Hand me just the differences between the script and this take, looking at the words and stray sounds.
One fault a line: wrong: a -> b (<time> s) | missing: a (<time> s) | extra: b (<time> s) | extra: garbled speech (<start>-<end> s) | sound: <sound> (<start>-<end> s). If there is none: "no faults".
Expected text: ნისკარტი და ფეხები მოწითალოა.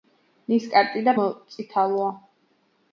missing: ფეხები (1.1 s)